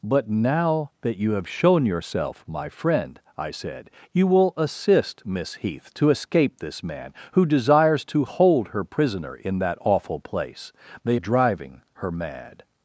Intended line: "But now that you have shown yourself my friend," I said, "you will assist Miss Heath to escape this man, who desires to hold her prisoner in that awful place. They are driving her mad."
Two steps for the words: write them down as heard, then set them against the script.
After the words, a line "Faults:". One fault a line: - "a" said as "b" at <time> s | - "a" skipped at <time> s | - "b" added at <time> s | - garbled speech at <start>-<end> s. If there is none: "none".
"But now that you have shown yourself my friend," I said, "you will assist Miss Heath to escape this man, who desires to hold her prisoner in that awful place. They driving her mad."
Faults:
- "are" skipped at 11.2 s